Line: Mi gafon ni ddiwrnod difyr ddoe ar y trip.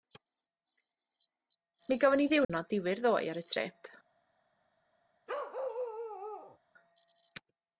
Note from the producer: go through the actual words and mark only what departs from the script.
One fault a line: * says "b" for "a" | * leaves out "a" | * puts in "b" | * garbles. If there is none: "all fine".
all fine